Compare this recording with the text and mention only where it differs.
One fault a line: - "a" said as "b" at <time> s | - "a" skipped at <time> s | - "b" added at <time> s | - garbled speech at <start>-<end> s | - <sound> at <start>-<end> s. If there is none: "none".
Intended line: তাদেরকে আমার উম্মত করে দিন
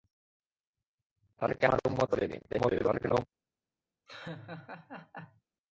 - garbled speech at 2.5-3.2 s
- laugh at 4.1-5.4 s